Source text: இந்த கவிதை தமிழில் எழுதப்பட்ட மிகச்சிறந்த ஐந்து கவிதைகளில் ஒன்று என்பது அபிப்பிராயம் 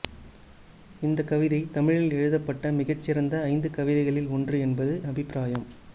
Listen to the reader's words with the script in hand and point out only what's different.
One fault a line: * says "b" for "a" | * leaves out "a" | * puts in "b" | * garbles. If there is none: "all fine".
all fine